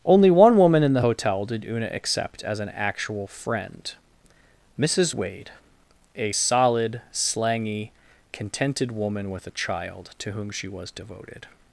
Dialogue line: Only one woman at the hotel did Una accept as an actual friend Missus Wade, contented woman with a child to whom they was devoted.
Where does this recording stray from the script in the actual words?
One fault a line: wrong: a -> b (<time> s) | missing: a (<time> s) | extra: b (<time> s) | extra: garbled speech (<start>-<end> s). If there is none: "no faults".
wrong: at -> in (0.8 s)
extra: a solid slangy (6.2 s)
wrong: they -> she (10.5 s)